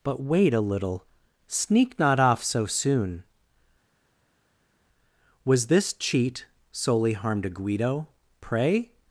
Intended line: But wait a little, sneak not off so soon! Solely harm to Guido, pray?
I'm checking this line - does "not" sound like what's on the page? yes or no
yes